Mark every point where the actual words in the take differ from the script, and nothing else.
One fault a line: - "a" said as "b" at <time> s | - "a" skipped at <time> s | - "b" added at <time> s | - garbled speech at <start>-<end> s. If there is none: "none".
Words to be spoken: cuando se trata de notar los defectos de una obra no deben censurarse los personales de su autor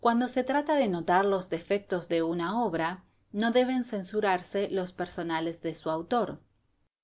none